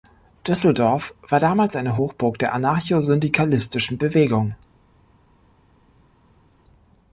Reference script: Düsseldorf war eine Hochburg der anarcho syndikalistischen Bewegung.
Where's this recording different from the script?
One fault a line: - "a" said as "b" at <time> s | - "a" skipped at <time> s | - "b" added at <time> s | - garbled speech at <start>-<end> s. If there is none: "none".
- "damals" added at 1.4 s